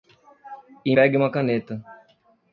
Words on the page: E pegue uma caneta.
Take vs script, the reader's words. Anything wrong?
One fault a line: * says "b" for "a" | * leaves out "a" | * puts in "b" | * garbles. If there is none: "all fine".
all fine